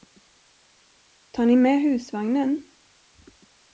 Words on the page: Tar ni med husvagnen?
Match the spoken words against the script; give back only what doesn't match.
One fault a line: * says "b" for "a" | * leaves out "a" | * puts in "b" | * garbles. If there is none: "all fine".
all fine